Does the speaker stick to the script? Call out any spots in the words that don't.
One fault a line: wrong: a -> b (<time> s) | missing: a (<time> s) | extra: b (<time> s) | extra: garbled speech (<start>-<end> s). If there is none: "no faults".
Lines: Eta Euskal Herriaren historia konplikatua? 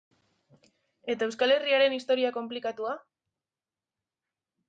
no faults